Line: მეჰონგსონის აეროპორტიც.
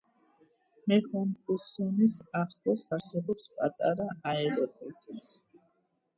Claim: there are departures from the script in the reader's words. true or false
true